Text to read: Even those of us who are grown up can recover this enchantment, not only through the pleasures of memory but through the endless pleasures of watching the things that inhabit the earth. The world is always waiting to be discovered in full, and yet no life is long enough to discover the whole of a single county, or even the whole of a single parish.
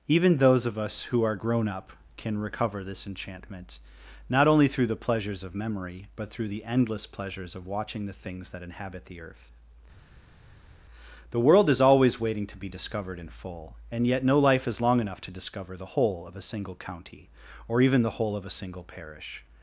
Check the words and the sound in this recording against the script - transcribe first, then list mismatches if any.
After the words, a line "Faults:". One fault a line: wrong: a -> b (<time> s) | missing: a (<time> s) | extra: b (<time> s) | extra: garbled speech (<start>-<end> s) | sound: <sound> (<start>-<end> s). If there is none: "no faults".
Even those of us who are grown up can recover this enchantment, not only through the pleasures of memory but through the endless pleasures of watching the things that inhabit the earth. The world is always waiting to be discovered in full, and yet no life is long enough to discover the whole of a single county, or even the whole of a single parish.
Faults:
no faults